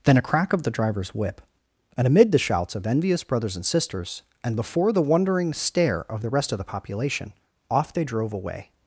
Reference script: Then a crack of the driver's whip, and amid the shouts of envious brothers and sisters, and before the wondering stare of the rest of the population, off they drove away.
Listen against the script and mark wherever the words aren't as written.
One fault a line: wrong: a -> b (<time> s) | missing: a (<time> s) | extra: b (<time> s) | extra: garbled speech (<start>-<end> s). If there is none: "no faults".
no faults